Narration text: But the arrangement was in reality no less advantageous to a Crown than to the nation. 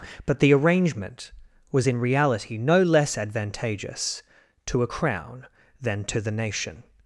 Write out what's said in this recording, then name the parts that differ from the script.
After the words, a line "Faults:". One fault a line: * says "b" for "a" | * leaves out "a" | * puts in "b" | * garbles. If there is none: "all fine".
But the arrangement was in reality no less advantageous to a Crown than to the nation.
Faults:
all fine